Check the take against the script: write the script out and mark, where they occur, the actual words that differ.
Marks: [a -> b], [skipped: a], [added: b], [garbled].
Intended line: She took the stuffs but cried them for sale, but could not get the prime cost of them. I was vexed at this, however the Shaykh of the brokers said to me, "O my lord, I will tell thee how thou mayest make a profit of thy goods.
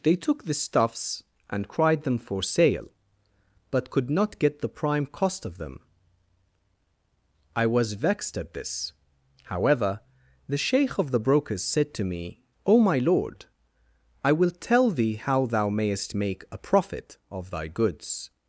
[She -> They] took the stuffs [but -> and] cried them for sale, but could not get the prime cost of them. I was vexed at this, however the Shaykh of the brokers said to me, "O my lord, I will tell thee how thou mayest make a profit of thy goods.